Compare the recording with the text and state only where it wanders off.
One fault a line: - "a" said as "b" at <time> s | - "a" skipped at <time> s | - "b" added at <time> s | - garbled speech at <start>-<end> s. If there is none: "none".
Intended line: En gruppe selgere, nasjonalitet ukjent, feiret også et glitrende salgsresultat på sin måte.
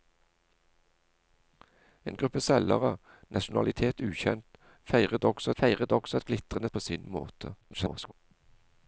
- "feiret også" added at 5.6 s
- "salgsresultat" skipped at 6.7 s
- garbled speech at 7.6-8.1 s